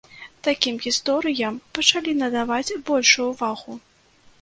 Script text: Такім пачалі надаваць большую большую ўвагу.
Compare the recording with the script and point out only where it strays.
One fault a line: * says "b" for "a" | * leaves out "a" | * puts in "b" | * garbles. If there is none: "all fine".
* puts in "гісторыям"
* leaves out "большую"